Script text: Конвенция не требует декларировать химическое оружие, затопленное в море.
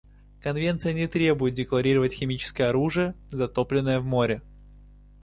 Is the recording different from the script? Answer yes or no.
no